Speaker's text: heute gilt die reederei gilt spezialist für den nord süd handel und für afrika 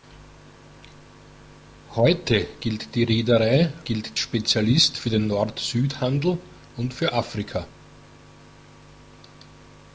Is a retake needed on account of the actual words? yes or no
no